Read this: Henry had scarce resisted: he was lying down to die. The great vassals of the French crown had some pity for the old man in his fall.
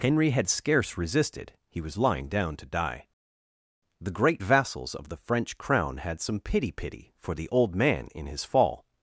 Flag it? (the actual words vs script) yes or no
yes